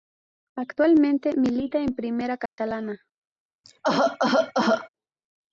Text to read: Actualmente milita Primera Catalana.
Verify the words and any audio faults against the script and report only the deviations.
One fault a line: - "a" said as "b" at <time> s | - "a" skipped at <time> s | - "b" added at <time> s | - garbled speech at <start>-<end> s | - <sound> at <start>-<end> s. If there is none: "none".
- "en" added at 1.8 s
- dropout at 2.5-2.6 s
- cough at 3.6-4.9 s